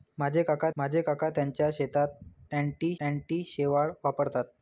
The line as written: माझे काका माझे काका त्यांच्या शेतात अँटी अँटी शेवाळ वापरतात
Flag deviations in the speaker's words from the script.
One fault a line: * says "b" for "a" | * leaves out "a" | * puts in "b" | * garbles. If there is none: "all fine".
all fine